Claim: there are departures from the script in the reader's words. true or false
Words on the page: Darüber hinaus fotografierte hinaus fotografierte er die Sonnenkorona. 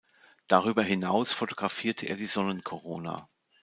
true